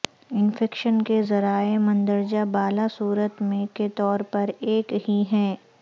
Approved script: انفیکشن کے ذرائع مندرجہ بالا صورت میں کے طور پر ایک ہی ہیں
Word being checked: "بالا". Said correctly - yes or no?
yes